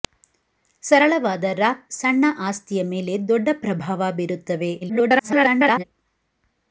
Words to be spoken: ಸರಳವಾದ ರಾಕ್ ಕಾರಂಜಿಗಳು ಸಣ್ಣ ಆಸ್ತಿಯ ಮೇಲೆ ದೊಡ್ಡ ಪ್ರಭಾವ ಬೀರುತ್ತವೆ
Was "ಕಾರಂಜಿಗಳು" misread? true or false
true